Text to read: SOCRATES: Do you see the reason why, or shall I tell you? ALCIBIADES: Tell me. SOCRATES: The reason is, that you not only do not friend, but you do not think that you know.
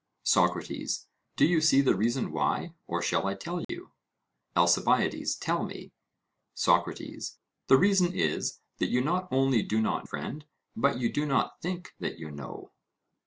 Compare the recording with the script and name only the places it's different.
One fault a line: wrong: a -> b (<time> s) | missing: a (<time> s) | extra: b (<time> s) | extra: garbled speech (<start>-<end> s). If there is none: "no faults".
no faults